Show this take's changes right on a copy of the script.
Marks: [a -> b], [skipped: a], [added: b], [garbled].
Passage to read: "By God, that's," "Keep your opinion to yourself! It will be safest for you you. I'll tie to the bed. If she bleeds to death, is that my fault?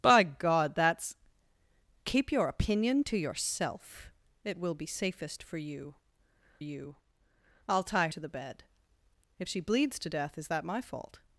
"By God, that's," "Keep your opinion to yourself! It will be safest for you you. I'll tie to the bed. If she bleeds to death, is that my fault?